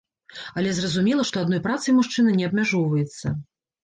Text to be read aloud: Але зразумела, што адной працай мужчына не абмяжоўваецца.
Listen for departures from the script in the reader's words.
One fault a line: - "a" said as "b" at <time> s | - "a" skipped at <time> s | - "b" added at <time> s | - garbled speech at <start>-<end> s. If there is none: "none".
none